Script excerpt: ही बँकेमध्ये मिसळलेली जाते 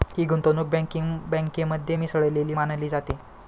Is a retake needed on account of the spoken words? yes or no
yes